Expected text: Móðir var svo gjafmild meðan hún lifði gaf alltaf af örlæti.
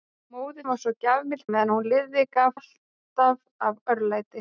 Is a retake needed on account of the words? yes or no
no